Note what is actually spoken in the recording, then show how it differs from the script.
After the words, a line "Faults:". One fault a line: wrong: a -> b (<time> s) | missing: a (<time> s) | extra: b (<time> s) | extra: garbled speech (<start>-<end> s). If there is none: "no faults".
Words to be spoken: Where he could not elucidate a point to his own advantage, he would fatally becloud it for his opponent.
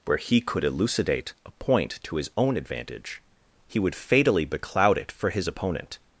Where he could elucidate a point to his own advantage, he would fatally becloud it for his opponent.
Faults:
missing: not (0.6 s)